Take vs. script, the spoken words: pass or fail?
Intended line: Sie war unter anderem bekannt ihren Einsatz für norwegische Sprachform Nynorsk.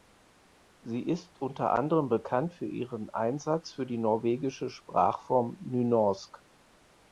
fail